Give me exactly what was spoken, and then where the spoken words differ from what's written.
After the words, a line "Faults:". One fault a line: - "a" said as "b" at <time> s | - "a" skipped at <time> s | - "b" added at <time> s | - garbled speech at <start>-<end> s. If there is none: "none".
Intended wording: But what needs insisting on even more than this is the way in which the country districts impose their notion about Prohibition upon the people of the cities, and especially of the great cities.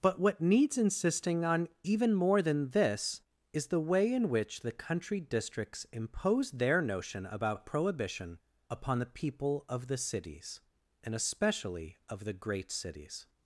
But what needs insisting on even more than this is the way in which the country districts impose their notion about Prohibition upon the people of the cities, and especially of the great cities.
Faults:
none